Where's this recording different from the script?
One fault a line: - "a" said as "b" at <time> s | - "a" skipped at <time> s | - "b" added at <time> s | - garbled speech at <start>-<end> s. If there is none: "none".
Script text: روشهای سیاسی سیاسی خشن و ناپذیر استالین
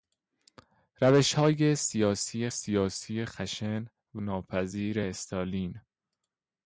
none